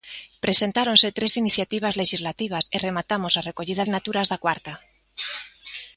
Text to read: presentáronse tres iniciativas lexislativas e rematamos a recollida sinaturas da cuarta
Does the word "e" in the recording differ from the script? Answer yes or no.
no